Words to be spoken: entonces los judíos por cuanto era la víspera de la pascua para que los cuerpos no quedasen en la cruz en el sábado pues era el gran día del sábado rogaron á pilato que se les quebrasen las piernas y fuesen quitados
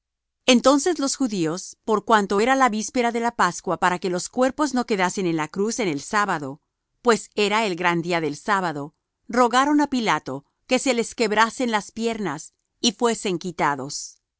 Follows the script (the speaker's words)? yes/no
yes